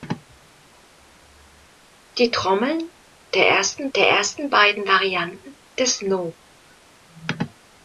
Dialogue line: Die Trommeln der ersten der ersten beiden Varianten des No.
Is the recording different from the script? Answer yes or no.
no